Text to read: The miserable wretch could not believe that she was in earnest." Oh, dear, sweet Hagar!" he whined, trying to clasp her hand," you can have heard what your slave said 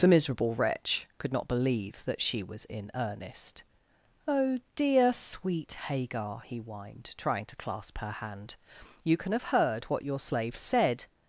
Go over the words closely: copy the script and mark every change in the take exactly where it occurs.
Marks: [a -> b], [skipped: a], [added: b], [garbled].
The miserable wretch could not believe that she was in earnest." Oh, dear, sweet Hagar!" he whined, trying to clasp her hand," you can have heard what your slave said